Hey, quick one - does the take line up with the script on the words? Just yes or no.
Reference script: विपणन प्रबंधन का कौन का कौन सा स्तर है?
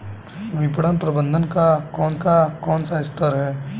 yes